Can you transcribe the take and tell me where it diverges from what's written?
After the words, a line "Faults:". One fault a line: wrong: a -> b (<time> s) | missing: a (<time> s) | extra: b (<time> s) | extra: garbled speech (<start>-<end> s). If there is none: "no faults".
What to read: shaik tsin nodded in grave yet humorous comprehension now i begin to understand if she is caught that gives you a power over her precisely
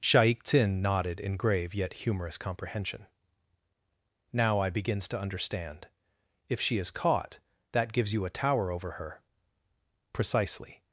shaik tsin nodded in grave yet humorous comprehension now i begins to understand if she is caught that gives you a tower over her precisely
Faults:
wrong: begin -> begins (4.7 s)
wrong: power -> tower (8.3 s)